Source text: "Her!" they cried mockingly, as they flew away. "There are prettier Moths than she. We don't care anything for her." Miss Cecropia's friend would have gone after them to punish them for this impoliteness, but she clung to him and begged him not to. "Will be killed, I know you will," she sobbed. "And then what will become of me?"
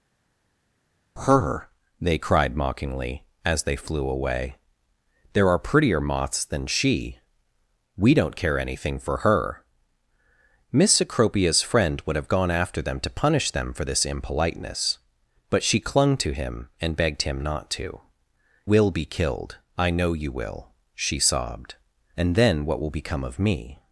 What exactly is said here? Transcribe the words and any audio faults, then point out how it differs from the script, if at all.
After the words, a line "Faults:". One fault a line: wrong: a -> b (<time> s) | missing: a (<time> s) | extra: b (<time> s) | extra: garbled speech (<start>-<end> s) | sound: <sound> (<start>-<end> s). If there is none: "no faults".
"Her!" they cried mockingly, as they flew away. "There are prettier Moths than she. We don't care anything for her." Miss Cecropia's friend would have gone after them to punish them for this impoliteness, but she clung to him and begged him not to. "Will be killed, I know you will," she sobbed. "And then what will become of me?"
Faults:
no faults